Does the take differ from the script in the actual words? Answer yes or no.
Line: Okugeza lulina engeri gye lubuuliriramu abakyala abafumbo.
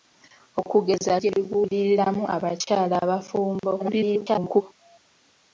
yes